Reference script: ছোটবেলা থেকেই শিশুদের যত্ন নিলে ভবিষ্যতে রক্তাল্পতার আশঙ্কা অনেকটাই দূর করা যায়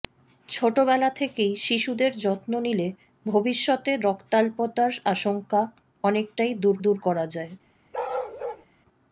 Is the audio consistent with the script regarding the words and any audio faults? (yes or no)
no